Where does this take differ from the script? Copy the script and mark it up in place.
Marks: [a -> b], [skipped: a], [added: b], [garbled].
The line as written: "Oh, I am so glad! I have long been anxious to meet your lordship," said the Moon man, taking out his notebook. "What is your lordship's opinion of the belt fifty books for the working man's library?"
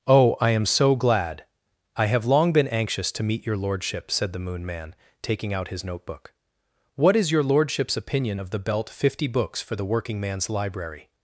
"Oh, I am so glad! I have long been anxious to meet your lordship," said the Moon man, taking out his notebook. "What is your lordship's opinion of the belt fifty books for the working man's library?"